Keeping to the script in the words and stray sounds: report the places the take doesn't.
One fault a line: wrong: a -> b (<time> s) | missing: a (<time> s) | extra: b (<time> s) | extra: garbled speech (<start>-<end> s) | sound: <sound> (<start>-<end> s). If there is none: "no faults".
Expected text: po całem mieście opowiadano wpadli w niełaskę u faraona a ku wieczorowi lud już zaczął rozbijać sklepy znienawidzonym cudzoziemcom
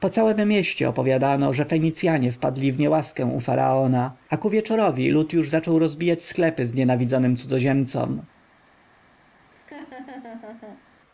extra: że fenicjanie (1.5 s)
sound: laugh (9.5-10.9 s)